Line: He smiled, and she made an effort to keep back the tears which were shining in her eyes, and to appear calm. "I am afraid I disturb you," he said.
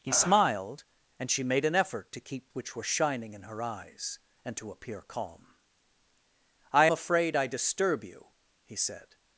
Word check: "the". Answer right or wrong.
wrong